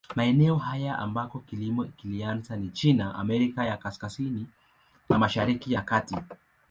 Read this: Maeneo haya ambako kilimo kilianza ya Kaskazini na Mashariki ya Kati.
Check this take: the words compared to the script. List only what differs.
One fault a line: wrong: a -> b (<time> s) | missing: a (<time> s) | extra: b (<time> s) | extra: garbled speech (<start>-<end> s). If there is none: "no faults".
extra: ni China Amerika (2.6 s)